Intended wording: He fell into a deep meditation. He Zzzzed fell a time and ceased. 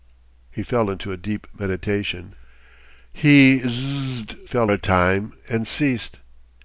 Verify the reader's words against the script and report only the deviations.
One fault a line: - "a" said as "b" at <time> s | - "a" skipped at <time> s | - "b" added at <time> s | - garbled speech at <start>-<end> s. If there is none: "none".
none